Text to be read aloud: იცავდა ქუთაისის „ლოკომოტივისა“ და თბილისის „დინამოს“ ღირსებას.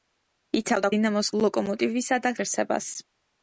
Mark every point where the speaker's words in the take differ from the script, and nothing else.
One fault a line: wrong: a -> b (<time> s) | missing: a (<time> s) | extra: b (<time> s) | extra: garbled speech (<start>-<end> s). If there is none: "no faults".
wrong: ქუთაისის -> დინამოს (1.0 s)
missing: თბილისის დინამოს (2.4 s)